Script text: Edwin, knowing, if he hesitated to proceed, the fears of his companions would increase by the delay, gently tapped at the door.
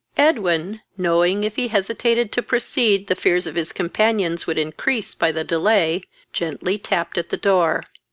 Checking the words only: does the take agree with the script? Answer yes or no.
yes